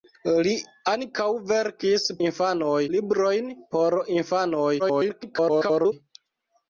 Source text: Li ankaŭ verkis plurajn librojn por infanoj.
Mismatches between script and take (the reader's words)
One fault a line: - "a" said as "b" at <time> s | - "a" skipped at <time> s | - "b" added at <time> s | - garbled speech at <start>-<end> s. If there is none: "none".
- "plurajn" said as "infanoj" at 2.3 s
- garbled speech at 4.8-5.9 s